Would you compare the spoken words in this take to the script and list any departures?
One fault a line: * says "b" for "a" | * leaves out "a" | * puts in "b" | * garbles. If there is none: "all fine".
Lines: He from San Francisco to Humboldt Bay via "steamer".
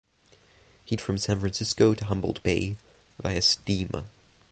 all fine